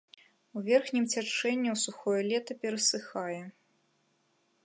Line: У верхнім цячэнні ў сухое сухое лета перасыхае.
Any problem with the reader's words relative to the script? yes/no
yes